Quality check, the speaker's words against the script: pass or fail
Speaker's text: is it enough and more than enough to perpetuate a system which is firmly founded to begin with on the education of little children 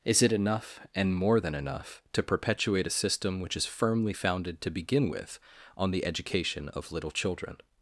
pass